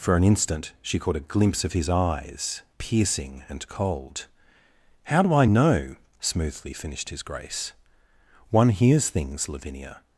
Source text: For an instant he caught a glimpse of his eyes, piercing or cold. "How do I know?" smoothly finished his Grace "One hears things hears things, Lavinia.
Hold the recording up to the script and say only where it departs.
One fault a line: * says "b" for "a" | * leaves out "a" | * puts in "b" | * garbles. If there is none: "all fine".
* says "she" for "he"
* says "and" for "or"
* leaves out "hears things"